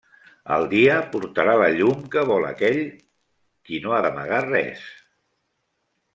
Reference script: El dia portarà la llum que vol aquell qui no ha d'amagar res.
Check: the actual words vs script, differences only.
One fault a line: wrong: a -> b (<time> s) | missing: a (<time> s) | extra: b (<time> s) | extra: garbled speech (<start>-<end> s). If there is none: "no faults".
no faults